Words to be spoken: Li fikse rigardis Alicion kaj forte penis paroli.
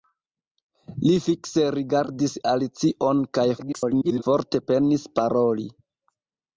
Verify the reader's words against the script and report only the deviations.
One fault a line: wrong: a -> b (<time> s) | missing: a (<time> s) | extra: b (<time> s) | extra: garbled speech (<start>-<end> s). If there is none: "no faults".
extra: garbled speech (3.6-4.2 s)